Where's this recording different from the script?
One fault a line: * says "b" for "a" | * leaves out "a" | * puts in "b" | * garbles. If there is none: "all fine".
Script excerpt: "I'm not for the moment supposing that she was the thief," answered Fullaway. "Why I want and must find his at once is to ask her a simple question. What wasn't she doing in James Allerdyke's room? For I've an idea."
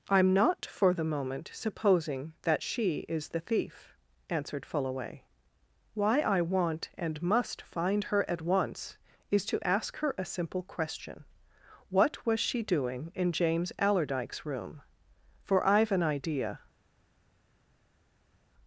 * says "is" for "was"
* says "her" for "his"
* says "was" for "wasn't"